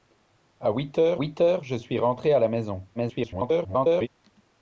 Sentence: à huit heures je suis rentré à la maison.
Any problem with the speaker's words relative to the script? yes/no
yes